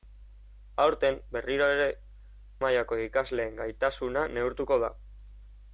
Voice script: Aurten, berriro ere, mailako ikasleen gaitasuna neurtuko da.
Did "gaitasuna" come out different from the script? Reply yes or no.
no